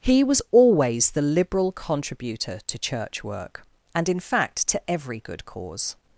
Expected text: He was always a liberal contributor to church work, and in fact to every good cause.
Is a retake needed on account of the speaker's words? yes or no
yes